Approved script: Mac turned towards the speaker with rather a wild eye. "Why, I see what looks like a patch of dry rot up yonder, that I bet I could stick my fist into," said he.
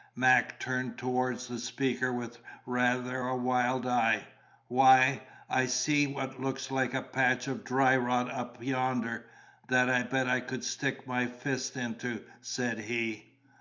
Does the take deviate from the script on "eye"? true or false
false